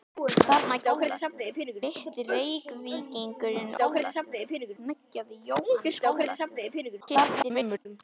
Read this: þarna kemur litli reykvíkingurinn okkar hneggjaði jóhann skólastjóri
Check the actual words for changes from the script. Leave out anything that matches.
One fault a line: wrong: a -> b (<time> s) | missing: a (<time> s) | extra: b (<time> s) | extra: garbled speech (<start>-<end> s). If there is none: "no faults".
wrong: kemur -> skólastjóri (0.8 s)
wrong: okkar -> skólastjóri (3.7 s)
extra: garbled speech (7.0-7.9 s)